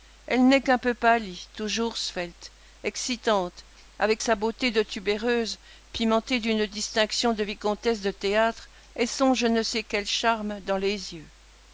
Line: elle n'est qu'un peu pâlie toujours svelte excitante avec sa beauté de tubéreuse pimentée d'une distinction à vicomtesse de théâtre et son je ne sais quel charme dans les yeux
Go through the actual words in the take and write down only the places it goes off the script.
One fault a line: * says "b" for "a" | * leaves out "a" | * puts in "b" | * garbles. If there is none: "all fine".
* says "de" for "à"